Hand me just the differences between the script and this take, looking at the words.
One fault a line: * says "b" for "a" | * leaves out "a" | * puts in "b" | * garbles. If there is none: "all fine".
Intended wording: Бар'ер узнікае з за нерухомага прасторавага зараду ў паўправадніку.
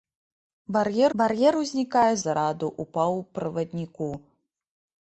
* puts in "бар'ер"
* leaves out "за нерухомага прасторавага"